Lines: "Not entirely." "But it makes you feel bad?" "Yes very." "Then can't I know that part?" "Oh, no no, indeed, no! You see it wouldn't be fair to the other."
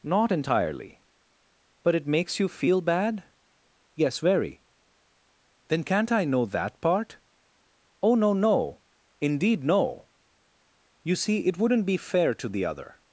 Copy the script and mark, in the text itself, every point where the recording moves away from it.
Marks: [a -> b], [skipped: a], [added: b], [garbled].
"Not entirely." "But it makes you feel bad?" "Yes very." "Then can't I know that part?" "Oh, no no, indeed, no! You see it wouldn't be fair to the other."